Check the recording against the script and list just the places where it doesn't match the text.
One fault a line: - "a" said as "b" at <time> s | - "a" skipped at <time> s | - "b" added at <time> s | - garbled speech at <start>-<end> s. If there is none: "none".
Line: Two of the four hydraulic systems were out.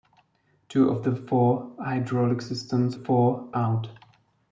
- "were" said as "four" at 2.9 s